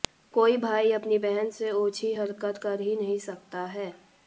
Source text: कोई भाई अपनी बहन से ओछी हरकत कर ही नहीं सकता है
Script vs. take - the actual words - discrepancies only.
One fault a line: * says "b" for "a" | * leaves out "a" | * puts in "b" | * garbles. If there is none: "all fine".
all fine